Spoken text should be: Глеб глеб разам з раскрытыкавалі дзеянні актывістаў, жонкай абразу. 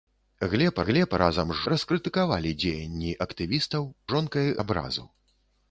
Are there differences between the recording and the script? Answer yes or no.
no